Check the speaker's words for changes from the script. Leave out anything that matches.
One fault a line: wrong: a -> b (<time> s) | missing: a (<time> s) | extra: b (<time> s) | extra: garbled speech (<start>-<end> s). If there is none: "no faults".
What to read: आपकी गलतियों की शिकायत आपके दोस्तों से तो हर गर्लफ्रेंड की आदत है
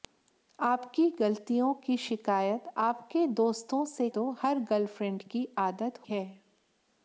no faults